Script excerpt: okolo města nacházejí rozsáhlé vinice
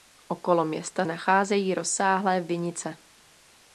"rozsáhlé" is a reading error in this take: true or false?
false